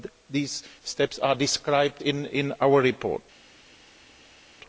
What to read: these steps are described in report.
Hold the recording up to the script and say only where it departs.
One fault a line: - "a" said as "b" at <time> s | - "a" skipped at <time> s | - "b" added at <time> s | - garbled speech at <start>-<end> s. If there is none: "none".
- "our" added at 2.6 s